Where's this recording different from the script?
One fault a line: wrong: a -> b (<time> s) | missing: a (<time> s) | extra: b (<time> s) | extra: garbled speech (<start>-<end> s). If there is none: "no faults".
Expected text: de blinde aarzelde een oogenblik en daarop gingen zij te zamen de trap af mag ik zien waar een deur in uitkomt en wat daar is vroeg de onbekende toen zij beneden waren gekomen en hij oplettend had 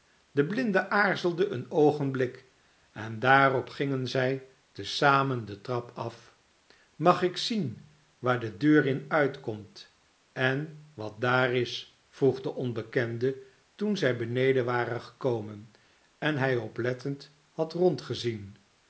wrong: een -> de (8.4 s)